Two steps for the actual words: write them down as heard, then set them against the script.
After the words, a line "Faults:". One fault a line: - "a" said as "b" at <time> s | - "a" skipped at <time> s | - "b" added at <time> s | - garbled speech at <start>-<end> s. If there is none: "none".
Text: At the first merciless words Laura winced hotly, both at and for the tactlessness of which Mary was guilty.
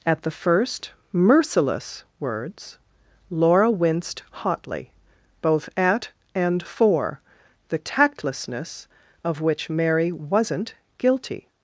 At the first merciless words Laura winced hotly, both at and for the tactlessness of which Mary wasn't guilty.
Faults:
- "was" said as "wasn't" at 10.1 s